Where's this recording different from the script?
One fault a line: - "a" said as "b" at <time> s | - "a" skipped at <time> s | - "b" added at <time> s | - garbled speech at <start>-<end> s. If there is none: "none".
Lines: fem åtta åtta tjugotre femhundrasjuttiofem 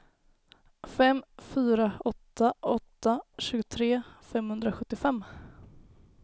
- "fyra" added at 1.4 s